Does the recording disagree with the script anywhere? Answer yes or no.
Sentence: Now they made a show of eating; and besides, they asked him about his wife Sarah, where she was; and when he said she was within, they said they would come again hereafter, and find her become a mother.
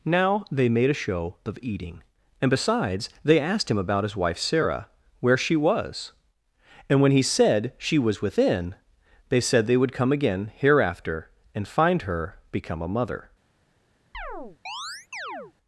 no